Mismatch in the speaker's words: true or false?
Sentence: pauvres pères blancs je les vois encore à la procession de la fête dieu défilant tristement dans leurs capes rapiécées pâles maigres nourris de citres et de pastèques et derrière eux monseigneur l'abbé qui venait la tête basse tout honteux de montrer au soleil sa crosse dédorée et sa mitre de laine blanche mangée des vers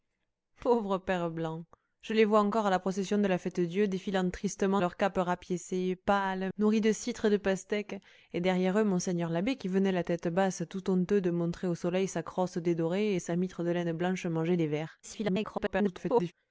true